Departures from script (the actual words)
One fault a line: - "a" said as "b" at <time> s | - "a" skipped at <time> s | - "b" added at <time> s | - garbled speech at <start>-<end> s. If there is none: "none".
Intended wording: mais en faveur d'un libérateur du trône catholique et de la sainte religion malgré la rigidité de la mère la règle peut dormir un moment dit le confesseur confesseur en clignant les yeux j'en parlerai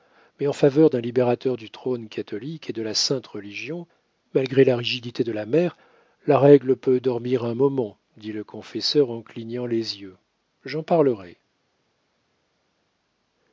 - "confesseur" skipped at 9.1 s